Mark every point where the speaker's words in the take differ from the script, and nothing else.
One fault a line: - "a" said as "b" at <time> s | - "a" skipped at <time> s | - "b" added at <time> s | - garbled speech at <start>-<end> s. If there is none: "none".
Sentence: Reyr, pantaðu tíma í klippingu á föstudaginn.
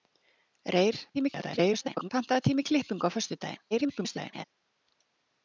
- garbled speech at 1.1-2.1 s
- garbled speech at 3.7-4.4 s